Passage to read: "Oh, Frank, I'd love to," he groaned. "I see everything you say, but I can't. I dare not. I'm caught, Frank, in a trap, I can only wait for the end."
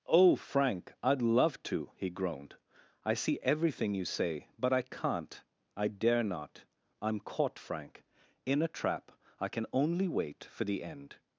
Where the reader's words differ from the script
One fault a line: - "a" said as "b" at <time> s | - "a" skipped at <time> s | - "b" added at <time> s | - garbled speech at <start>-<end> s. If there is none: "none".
none